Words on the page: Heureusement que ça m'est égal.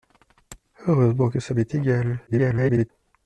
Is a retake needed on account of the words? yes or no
yes